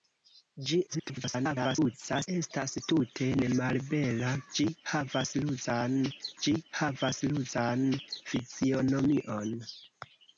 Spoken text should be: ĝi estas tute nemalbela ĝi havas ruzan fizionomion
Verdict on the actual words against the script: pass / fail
fail